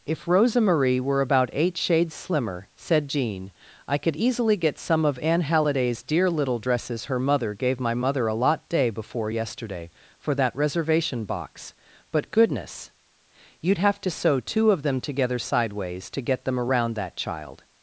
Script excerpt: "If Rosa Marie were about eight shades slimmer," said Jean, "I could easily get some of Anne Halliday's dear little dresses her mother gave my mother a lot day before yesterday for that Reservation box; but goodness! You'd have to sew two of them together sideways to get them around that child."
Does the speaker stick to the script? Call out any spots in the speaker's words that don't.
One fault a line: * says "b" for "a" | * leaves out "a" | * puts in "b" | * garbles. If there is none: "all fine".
all fine